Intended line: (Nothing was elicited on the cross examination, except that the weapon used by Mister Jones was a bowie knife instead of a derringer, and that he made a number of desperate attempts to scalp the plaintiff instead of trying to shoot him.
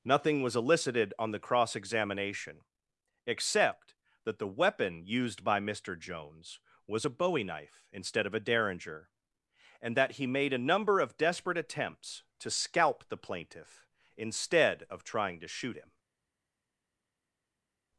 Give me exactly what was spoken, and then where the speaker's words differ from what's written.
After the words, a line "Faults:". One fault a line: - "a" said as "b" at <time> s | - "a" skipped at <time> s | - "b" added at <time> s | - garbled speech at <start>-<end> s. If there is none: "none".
(Nothing was elicited on the cross examination, except that the weapon used by Mister Jones was a bowie knife instead of a derringer, and that he made a number of desperate attempts to scalp the plaintiff instead of trying to shoot him.
Faults:
none